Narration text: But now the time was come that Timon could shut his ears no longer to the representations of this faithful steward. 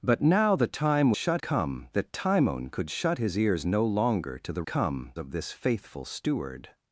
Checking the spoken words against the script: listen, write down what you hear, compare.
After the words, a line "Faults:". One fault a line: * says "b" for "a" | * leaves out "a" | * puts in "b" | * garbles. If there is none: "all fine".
But now the time shut come that Timon could shut his ears no longer to the come of this faithful steward.
Faults:
* says "shut" for "was"
* says "come" for "representations"